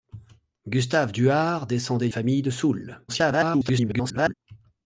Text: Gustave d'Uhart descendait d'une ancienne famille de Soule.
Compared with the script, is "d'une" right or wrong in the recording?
wrong